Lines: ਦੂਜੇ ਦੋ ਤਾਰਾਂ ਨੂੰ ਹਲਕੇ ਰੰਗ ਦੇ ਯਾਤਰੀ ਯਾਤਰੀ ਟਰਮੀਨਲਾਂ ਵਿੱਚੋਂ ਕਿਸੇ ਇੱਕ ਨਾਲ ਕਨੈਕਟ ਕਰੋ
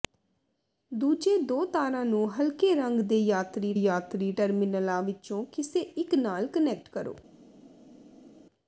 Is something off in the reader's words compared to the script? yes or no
no